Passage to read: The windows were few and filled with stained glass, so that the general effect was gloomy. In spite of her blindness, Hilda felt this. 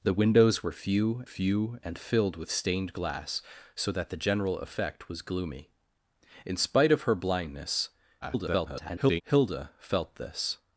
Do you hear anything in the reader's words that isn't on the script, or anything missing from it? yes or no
yes